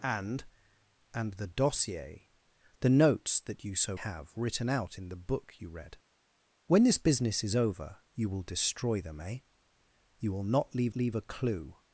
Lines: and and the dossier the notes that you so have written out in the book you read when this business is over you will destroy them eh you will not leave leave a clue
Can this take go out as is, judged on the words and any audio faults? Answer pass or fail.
pass